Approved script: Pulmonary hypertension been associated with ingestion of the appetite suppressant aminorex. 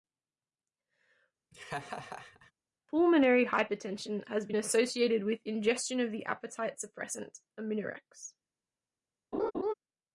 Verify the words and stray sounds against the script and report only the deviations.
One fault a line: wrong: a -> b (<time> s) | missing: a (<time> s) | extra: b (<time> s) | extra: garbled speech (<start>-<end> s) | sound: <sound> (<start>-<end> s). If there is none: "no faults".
sound: laugh (1.5-2.5 s)
extra: has (4.3 s)
sound: laugh (9.3-9.7 s)